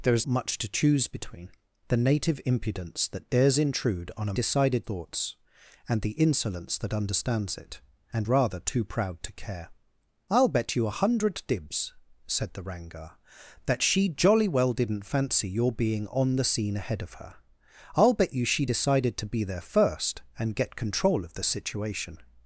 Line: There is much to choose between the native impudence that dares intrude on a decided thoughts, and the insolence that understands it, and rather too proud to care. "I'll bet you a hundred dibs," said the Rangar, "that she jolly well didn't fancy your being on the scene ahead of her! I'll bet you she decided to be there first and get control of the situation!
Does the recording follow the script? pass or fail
pass